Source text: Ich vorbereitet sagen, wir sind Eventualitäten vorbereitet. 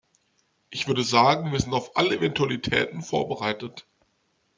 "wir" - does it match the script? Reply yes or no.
yes